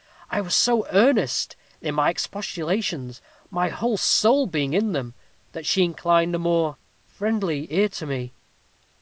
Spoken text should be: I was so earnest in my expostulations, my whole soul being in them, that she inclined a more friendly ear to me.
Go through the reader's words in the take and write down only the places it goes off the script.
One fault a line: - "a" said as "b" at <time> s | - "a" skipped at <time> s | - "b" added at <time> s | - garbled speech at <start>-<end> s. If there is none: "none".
none